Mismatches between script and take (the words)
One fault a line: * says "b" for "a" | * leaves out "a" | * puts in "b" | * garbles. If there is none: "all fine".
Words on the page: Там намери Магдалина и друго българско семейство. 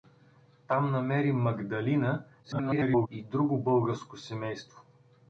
* garbles